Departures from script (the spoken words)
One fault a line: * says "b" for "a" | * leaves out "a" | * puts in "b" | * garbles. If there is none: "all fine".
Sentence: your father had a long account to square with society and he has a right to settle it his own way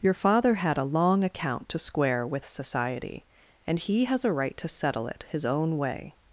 all fine